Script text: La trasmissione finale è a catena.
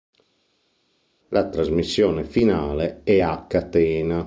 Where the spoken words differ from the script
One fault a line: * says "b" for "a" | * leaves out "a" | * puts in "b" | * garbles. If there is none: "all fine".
all fine